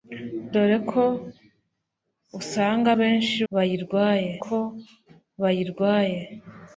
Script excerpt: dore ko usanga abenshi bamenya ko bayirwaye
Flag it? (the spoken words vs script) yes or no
yes